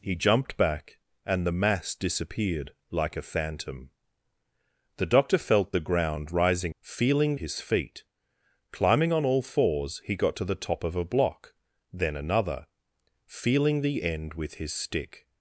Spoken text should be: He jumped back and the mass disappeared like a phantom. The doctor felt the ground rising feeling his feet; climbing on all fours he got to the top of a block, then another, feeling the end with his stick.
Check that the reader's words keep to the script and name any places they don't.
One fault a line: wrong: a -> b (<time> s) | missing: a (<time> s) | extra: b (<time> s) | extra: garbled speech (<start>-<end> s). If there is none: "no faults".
no faults